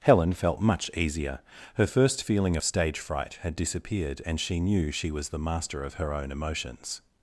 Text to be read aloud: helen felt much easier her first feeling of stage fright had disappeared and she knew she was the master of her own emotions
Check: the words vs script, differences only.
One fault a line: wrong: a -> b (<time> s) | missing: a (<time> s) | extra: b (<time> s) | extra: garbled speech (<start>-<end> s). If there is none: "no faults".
no faults